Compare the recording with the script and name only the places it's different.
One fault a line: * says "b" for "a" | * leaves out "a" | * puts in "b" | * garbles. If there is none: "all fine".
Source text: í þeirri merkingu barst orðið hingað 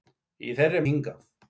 * leaves out "merkingu barst orðið"